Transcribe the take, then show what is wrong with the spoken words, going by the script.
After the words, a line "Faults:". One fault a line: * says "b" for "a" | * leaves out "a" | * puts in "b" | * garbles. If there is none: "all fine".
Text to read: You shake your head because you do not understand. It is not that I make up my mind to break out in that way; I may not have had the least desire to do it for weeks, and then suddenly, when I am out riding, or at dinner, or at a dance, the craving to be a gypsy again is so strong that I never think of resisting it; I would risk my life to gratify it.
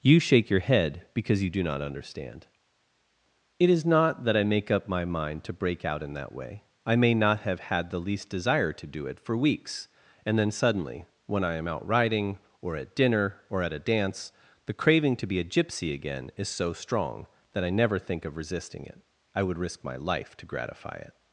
You shake your head because you do not understand. It is not that I make up my mind to break out in that way; I may not have had the least desire to do it for weeks, and then suddenly, when I am out riding, or at dinner, or at a dance, the craving to be a gypsy again is so strong that I never think of resisting it; I would risk my life to gratify it.
Faults:
all fine